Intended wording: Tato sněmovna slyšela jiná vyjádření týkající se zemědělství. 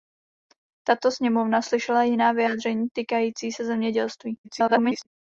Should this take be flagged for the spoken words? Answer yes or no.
yes